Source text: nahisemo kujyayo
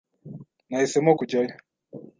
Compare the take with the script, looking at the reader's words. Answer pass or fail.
pass